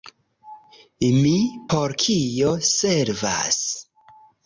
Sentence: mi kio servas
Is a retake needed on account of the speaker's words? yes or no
yes